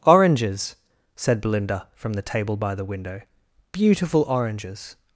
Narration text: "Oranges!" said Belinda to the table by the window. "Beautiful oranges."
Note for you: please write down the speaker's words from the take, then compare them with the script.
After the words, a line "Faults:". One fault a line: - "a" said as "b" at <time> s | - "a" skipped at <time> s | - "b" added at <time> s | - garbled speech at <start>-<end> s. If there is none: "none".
"Oranges!" said Belinda from the table by the window. "Beautiful oranges."
Faults:
- "to" said as "from" at 1.9 s